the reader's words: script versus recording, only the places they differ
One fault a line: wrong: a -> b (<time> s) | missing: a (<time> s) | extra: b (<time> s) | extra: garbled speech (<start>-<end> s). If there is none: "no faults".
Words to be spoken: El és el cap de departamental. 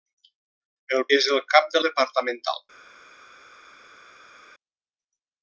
no faults